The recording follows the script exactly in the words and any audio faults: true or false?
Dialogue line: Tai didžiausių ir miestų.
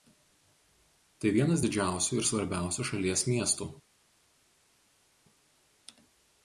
false